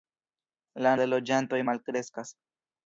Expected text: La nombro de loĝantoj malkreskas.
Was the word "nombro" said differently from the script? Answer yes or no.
yes